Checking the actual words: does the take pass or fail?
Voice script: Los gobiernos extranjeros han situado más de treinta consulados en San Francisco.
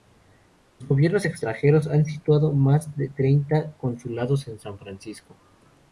pass